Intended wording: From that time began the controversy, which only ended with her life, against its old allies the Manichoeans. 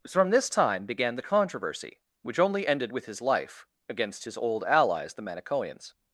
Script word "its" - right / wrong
wrong